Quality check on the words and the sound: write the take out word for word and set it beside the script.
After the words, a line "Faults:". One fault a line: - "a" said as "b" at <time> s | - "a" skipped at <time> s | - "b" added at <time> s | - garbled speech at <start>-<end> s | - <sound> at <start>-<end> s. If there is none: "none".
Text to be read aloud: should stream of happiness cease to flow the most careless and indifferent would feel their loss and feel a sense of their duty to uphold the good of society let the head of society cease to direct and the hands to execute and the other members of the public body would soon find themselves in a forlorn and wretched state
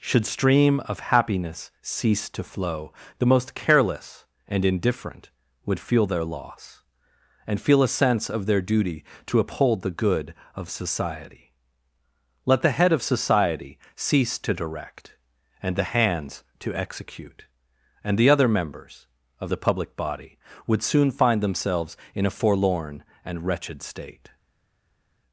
should stream of happiness cease to flow the most careless and indifferent would feel their loss and feel a sense of their duty to uphold the good of society let the head of society cease to direct and the hands to execute and the other members of the public body would soon find themselves in a forlorn and wretched state
Faults:
none